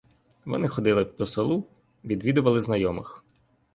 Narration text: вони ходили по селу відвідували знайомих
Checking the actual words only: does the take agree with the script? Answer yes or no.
yes